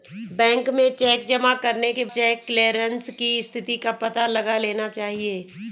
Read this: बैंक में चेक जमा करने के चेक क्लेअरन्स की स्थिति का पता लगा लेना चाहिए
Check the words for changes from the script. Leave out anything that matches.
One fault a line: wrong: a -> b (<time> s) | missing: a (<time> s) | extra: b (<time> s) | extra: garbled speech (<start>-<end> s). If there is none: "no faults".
no faults